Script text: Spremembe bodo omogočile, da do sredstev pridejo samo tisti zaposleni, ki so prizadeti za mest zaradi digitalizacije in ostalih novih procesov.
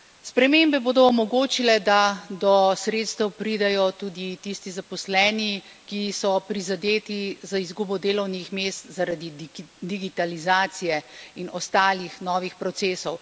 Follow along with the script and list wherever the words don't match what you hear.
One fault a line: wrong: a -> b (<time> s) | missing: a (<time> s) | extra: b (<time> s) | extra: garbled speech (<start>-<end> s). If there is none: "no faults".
wrong: samo -> tudi (3.9 s)
extra: izgubo delovnih (7.6 s)